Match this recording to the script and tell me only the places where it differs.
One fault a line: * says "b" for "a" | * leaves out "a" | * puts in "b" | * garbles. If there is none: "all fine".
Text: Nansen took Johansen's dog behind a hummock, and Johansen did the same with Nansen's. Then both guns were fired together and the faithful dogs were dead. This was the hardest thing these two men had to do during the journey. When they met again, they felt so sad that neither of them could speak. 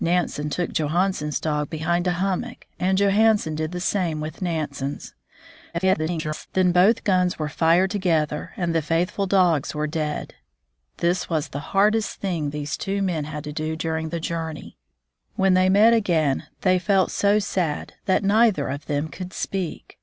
* garbles